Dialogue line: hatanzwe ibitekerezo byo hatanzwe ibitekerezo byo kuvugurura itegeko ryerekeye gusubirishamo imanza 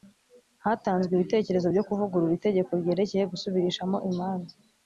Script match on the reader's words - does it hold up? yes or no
no